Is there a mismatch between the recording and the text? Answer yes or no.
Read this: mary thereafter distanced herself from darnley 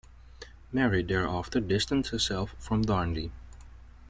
no